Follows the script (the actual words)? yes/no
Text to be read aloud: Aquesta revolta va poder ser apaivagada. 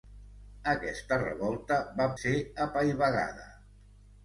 no